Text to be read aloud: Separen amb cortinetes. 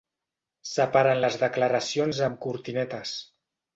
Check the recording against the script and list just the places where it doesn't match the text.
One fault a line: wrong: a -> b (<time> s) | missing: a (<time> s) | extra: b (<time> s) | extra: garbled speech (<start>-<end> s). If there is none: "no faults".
extra: les declaracions (1.2 s)